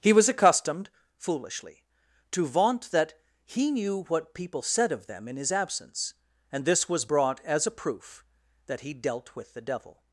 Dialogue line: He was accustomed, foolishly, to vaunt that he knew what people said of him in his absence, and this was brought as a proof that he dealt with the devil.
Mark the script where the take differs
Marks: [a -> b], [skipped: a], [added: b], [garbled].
He was accustomed, foolishly, to vaunt that he knew what people said of [him -> them] in his absence, and this was brought as a proof that he dealt with the devil.